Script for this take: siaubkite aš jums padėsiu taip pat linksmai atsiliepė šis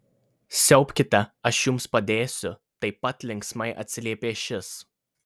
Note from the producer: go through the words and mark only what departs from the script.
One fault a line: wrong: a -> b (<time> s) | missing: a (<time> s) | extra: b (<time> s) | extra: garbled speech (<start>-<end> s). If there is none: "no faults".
no faults